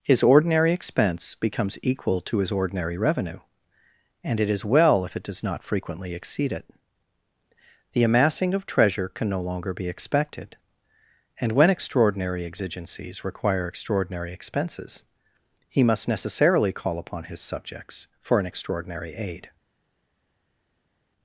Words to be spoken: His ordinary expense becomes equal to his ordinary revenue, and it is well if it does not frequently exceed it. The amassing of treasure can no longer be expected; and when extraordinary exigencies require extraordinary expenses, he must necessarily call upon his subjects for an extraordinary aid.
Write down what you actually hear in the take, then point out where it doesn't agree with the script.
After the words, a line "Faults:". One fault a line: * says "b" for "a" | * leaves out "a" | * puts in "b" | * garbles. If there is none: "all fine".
His ordinary expense becomes equal to his ordinary revenue, and it is well if it does not frequently exceed it. The amassing of treasure can no longer be expected; and when extraordinary exigencies require extraordinary expenses, he must necessarily call upon his subjects for an extraordinary aid.
Faults:
all fine